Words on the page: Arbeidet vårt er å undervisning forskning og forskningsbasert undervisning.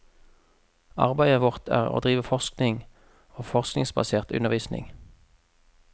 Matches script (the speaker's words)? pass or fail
fail